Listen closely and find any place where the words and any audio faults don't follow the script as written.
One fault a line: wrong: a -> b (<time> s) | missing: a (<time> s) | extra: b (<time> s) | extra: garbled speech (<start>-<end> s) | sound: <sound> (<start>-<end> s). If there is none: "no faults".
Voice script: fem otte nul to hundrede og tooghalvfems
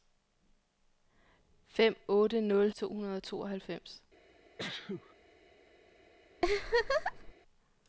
sound: sneeze (4.6-5.1 s)
sound: laugh (6.4-7.3 s)